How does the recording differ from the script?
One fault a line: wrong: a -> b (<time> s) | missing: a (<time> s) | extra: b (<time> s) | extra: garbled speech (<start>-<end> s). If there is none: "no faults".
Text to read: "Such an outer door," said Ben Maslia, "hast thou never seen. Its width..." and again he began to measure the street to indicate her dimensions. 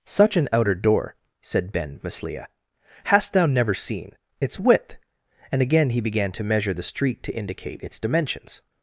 wrong: her -> its (7.8 s)